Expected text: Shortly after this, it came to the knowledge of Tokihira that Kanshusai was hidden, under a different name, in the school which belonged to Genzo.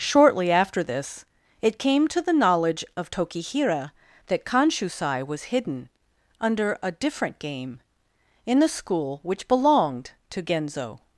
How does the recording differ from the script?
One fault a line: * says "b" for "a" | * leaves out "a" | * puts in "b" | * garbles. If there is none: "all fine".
* says "game" for "name"